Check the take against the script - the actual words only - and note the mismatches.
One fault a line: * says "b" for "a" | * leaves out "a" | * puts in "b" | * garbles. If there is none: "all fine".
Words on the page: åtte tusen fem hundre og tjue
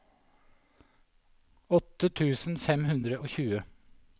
all fine